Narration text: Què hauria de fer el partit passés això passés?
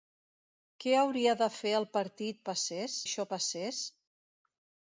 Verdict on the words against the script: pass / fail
pass